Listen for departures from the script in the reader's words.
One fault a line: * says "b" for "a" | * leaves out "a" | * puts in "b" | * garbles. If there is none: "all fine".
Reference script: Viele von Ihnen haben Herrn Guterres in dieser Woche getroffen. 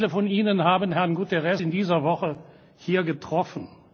* puts in "hier"